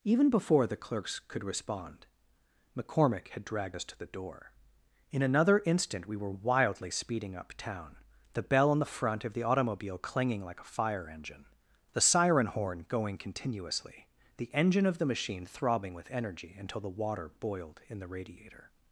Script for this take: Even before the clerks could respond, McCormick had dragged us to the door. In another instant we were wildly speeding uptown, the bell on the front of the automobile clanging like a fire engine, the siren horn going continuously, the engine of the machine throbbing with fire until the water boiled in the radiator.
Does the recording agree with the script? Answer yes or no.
no